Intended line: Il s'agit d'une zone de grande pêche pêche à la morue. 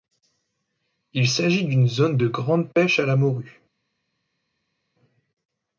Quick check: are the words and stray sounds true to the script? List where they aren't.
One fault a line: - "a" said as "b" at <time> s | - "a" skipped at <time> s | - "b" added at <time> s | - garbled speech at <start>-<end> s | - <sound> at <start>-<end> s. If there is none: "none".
- "pêche" skipped at 3.0 s